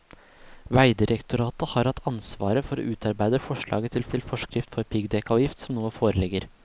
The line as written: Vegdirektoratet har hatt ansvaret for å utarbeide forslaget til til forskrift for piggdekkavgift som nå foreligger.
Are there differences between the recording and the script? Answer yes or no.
no